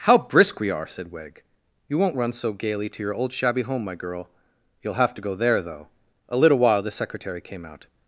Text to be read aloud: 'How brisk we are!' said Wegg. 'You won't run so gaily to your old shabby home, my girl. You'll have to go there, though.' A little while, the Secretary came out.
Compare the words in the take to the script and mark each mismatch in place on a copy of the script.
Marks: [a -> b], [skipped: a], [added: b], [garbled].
'How brisk we are!' said Wegg. 'You won't run so gaily to your old shabby home, my girl. You'll have to go there, though.' A little while, the Secretary came out.